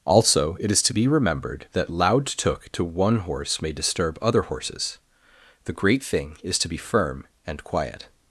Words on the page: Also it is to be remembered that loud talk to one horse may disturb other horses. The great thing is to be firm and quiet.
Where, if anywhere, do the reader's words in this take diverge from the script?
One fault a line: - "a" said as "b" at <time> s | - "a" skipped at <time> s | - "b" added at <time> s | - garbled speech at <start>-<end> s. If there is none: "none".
- "talk" said as "took" at 2.2 s